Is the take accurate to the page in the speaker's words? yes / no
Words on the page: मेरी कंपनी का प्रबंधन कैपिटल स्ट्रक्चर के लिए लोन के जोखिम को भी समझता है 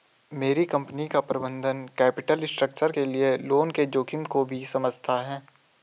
yes